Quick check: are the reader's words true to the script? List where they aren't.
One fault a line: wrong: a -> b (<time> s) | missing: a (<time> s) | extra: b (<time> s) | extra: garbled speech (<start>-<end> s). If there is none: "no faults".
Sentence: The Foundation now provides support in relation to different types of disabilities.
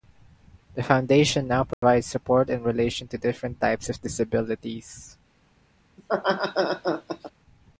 no faults